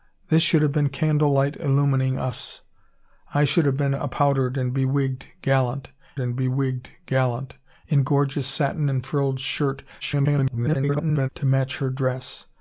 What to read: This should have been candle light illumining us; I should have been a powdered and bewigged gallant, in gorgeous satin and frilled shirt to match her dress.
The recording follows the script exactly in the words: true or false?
false